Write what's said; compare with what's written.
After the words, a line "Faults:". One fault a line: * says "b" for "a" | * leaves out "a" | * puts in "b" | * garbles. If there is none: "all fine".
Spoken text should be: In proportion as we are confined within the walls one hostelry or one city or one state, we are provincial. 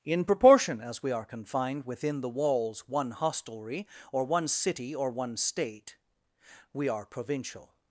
In proportion as we are confined within the walls one hostelry or one city or one state, we are provincial.
Faults:
all fine